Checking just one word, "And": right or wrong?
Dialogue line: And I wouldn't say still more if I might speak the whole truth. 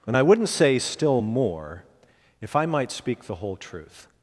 right